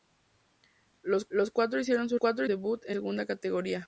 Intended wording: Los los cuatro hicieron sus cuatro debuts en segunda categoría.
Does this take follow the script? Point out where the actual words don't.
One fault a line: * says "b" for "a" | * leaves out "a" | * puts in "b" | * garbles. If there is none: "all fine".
all fine